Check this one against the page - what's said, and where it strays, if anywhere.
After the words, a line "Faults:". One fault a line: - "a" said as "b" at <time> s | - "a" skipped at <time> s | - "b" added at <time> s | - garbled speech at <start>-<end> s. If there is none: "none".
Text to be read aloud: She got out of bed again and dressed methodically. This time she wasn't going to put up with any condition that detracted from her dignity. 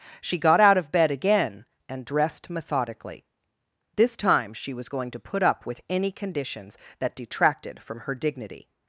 She got out of bed again and dressed methodically. This time she was going to put up with any conditions that detracted from her dignity.
Faults:
- "wasn't" said as "was" at 4.7 s
- "condition" said as "conditions" at 6.1 s